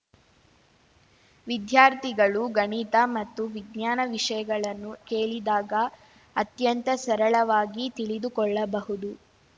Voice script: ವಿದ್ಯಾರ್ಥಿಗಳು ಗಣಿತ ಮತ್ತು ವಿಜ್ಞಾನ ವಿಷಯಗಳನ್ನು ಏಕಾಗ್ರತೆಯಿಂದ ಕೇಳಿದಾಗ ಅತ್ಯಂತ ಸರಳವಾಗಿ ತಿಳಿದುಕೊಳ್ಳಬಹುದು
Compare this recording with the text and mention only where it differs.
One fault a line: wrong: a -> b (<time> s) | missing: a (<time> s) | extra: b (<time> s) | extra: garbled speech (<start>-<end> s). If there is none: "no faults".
missing: ಏಕಾಗ್ರತೆಯಿಂದ (4.9 s)